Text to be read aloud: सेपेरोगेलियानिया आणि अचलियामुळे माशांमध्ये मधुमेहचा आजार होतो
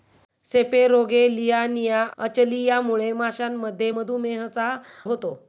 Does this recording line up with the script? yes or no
no